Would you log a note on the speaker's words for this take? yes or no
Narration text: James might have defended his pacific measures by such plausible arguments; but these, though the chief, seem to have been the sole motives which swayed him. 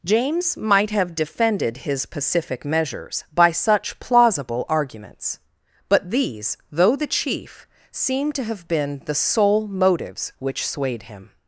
no